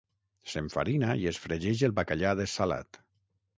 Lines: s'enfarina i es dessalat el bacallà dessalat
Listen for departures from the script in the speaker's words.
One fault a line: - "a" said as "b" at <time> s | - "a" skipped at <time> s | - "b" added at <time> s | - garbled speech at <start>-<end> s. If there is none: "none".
- "dessalat" said as "fregeix" at 1.4 s